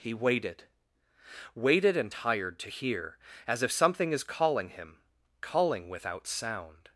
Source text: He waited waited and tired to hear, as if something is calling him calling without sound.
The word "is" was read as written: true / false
true